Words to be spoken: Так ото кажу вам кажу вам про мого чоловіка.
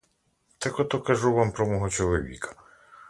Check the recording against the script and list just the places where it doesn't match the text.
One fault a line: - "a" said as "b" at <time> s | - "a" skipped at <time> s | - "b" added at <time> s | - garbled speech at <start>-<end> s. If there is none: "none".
- "кажу вам" skipped at 1.5 s